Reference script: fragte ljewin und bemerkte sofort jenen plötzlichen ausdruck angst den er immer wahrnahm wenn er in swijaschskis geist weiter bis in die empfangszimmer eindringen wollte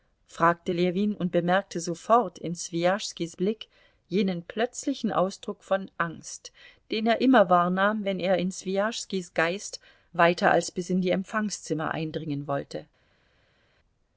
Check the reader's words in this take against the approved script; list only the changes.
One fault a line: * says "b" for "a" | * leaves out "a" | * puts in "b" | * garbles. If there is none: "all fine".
* puts in "in swijaschskis blick"
* puts in "von"
* puts in "als"